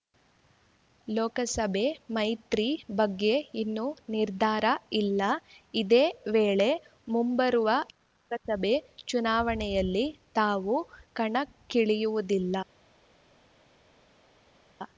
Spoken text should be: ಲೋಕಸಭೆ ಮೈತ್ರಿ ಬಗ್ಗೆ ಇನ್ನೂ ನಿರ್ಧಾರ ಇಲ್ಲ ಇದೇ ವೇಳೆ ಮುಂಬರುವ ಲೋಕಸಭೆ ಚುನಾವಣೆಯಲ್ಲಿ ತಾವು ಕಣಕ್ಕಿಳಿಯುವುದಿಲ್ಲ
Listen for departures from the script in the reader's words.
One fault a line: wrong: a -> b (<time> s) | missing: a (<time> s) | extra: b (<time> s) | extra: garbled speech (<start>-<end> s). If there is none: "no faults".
no faults